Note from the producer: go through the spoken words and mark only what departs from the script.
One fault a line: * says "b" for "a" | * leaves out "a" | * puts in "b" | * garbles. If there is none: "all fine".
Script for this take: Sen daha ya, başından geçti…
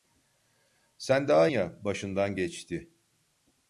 all fine